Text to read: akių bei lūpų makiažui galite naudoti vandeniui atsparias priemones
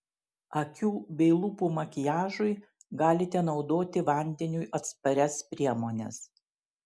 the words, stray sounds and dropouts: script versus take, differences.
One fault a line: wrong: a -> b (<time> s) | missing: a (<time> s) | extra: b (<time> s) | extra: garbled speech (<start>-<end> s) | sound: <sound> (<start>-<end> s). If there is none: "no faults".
no faults